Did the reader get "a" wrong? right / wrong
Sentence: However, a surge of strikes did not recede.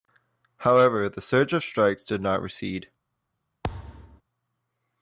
wrong